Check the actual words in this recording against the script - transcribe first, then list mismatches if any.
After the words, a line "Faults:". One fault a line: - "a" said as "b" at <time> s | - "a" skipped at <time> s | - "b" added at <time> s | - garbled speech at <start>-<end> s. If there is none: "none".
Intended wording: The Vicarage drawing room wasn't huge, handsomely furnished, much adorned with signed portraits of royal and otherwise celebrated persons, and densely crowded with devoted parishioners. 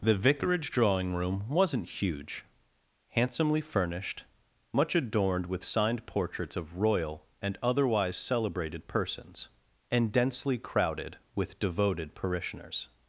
The Vicarage drawing room wasn't huge, handsomely furnished, much adorned with signed portraits of royal and otherwise celebrated persons, and densely crowded with devoted parishioners.
Faults:
none